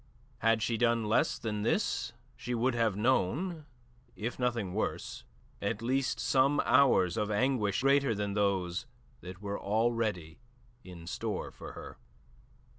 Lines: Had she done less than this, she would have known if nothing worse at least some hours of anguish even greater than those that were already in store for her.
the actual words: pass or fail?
fail